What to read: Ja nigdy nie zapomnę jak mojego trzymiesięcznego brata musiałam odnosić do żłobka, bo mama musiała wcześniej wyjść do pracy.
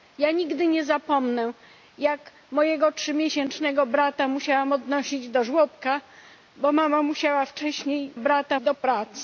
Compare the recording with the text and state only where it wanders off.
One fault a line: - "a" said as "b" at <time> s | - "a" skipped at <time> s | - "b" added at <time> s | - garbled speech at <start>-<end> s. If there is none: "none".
- "wyjść" said as "brata" at 8.2 s